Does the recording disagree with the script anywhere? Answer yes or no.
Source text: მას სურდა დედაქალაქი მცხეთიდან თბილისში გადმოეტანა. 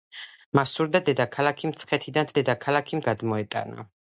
yes